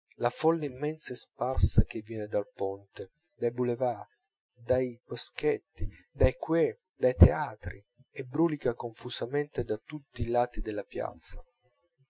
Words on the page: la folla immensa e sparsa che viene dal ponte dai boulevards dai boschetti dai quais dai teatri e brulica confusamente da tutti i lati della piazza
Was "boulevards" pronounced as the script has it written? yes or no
yes